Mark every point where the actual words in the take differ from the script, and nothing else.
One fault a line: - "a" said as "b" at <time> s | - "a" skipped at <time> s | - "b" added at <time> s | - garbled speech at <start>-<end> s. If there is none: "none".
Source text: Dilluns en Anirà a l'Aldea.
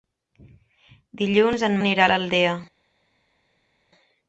none